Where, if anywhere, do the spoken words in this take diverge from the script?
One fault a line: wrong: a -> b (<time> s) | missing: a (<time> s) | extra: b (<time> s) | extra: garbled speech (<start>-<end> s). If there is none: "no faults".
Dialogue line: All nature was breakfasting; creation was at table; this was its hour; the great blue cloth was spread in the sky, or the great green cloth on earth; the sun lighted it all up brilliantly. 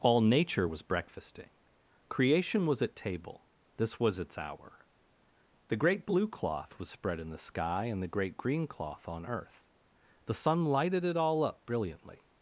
wrong: or -> and (7.8 s)